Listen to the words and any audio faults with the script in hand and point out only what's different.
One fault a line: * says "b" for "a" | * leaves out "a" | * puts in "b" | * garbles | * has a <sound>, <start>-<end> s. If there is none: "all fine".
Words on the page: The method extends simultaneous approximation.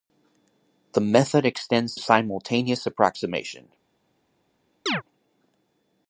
* has a chirp, 4.9-5.0 s